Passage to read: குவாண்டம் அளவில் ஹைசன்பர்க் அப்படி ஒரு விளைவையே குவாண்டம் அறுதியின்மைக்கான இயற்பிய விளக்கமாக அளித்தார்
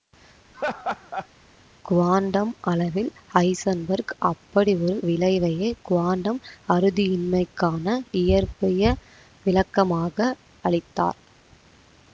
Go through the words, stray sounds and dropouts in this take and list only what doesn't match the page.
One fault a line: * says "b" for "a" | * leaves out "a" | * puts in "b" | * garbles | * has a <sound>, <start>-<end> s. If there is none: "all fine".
* has a laugh, 0.5-1.3 s